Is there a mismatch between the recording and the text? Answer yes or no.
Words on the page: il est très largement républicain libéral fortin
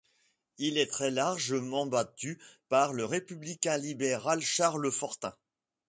yes